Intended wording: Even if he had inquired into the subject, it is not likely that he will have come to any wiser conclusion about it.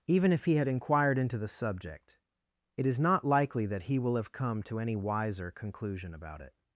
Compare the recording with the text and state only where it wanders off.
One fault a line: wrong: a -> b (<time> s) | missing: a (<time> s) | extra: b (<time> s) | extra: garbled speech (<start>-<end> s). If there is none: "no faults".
no faults